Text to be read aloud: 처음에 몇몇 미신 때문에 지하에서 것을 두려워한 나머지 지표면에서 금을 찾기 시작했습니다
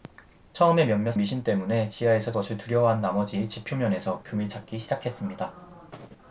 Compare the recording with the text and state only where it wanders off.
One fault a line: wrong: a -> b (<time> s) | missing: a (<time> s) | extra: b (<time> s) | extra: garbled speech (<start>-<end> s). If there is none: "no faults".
no faults